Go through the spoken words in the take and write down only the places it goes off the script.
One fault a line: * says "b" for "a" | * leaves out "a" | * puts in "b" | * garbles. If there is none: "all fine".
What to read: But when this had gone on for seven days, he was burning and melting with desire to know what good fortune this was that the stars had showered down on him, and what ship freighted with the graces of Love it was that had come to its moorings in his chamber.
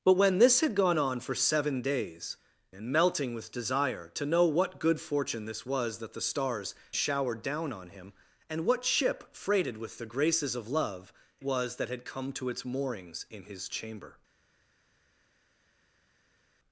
* leaves out "he was burning"
* leaves out "had"
* leaves out "it"